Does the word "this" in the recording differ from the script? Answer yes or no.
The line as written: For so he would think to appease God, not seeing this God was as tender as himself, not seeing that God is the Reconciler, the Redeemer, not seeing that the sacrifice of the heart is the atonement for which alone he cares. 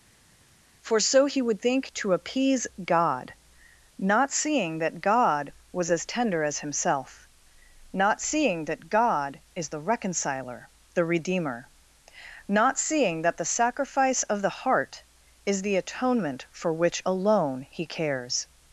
yes